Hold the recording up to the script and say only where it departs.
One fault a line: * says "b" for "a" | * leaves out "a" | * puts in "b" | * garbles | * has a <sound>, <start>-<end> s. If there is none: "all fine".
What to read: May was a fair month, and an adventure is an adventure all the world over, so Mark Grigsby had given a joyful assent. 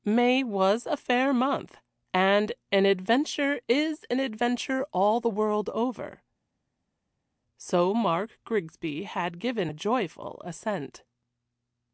all fine